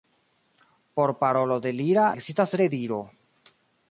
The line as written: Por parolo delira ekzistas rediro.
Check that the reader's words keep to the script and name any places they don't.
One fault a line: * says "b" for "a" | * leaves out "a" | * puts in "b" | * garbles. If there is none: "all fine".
all fine